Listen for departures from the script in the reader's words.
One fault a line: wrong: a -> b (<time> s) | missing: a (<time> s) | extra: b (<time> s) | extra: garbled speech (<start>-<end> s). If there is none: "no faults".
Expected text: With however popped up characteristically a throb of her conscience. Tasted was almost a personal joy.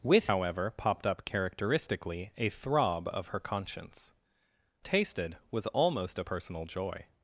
no faults